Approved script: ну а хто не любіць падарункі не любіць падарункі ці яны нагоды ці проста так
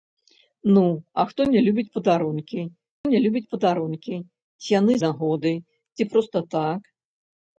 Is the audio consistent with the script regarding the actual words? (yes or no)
yes